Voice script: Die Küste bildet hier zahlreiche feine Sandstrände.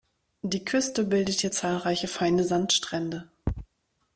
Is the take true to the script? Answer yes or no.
yes